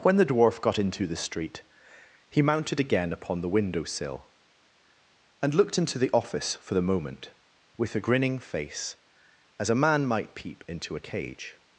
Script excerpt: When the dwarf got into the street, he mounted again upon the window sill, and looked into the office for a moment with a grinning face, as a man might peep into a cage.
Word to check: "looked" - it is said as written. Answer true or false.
true